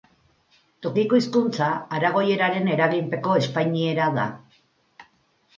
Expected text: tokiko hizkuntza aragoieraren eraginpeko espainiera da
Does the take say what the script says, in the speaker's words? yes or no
yes